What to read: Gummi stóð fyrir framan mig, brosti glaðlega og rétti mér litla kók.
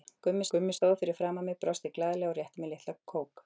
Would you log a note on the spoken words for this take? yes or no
yes